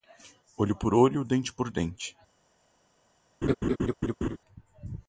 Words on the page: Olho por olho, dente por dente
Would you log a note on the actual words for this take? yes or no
no